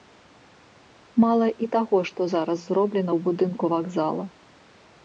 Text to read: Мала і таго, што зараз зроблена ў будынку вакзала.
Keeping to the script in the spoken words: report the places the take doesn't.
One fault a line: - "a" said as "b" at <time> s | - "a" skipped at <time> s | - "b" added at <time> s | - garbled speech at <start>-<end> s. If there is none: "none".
none